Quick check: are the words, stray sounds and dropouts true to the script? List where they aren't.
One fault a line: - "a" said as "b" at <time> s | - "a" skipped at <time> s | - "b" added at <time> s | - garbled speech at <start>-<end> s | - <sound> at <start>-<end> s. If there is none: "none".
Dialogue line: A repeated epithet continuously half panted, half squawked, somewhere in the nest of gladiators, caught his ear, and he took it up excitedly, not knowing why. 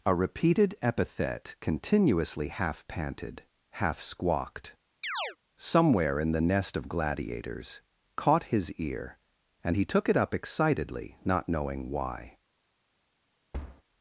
- chirp at 5.0-5.4 s
- thud at 13.5-13.8 s